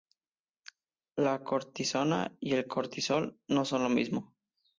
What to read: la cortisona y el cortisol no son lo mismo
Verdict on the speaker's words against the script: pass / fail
pass